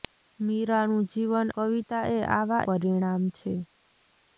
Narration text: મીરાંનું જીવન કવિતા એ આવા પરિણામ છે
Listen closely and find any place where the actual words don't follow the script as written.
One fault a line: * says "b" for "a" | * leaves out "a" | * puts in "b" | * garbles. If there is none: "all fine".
all fine